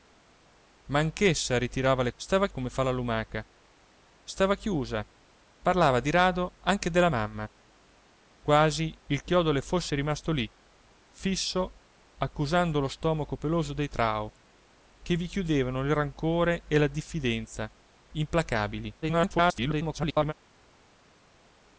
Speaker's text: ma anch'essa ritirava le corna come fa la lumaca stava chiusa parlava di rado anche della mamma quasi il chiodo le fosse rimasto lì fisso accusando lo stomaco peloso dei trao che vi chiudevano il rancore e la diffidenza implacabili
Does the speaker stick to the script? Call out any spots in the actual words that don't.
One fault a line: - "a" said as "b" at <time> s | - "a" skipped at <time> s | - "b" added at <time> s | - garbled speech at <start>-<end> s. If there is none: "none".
- "corna" said as "stava" at 2.1 s
- garbled speech at 19.0-20.3 s